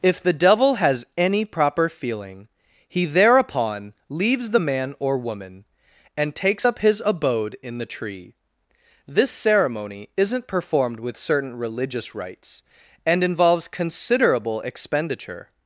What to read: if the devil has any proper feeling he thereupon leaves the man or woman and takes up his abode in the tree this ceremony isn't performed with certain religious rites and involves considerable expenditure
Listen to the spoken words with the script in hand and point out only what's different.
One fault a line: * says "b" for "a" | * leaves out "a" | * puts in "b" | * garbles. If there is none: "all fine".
all fine